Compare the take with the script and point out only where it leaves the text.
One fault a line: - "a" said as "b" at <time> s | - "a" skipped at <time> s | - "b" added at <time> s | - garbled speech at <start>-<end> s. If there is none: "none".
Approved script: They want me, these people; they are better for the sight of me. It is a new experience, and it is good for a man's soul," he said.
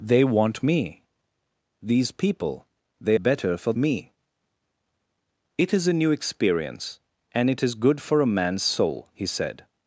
- "are" skipped at 3.2 s
- "the sight of" skipped at 3.7 s